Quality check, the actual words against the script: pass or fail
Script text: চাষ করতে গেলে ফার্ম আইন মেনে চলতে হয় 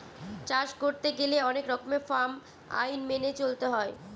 fail